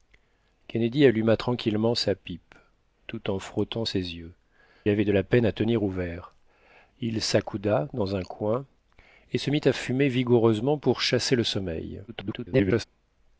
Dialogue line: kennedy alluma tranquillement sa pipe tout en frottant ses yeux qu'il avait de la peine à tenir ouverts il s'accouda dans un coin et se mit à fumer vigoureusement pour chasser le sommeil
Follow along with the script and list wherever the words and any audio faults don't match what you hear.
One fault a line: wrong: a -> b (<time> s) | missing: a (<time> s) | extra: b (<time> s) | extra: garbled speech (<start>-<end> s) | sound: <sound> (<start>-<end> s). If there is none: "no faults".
missing: qu'il (4.3 s)
extra: garbled speech (12.1-12.8 s)